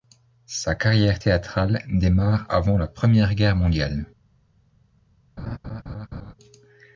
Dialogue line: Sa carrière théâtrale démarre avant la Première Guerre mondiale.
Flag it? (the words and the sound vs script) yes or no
yes